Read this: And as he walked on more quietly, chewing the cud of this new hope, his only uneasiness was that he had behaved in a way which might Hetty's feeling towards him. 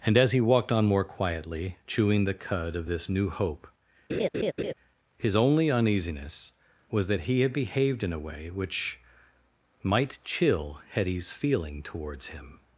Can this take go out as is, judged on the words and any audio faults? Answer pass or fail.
fail